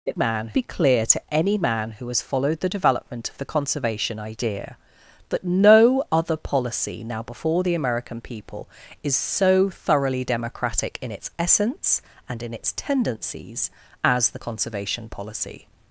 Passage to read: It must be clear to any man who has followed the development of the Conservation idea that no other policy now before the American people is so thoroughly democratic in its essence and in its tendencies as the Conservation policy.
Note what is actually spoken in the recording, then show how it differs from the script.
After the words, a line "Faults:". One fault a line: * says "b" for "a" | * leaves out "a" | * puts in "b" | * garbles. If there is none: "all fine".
It man be clear to any man who has followed the development of the Conservation idea that no other policy now before the American people is so thoroughly democratic in its essence and in its tendencies as the Conservation policy.
Faults:
* says "man" for "must"